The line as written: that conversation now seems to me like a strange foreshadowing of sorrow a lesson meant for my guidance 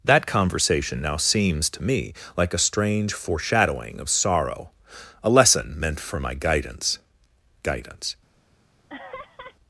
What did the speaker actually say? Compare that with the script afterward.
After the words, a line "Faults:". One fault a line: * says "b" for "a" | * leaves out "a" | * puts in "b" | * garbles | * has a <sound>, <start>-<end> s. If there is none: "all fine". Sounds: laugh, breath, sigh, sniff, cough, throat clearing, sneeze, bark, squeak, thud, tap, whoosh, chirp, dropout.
that conversation now seems to me like a strange foreshadowing of sorrow a lesson meant for my guidance guidance
Faults:
* puts in "guidance"
* has a laugh, 8.9-9.6 s